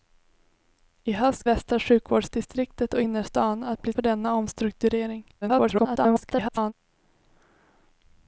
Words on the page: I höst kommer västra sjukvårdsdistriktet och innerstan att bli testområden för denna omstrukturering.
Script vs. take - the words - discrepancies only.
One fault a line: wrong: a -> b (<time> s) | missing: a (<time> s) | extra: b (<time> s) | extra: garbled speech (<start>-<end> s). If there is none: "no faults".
missing: kommer (1.5 s)
missing: testområden (3.9 s)
extra: garbled speech (5.4-6.7 s)